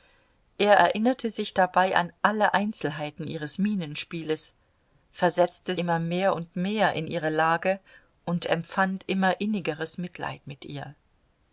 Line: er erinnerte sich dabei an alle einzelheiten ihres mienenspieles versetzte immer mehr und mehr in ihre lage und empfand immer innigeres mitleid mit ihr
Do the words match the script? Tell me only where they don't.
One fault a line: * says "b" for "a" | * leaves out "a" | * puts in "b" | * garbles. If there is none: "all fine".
all fine